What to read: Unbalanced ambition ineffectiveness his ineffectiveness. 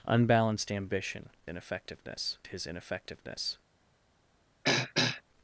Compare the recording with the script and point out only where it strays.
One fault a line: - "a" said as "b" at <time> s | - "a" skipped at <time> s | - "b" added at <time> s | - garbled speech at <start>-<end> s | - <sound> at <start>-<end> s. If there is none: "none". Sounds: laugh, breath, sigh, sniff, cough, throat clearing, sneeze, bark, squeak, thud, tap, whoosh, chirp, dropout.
- throat clearing at 4.6-5.2 s